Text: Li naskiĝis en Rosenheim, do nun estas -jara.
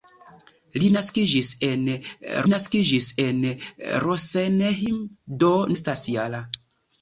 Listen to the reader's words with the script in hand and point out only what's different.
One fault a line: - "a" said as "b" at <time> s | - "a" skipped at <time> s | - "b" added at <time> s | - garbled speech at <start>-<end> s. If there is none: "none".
- "naskiĝis en" added at 2.5 s
- "nun" skipped at 5.5 s